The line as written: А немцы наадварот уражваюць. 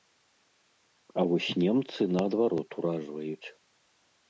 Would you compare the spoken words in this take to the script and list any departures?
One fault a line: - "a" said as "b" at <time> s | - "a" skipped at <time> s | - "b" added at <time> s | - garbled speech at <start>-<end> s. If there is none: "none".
- "вось" added at 1.3 s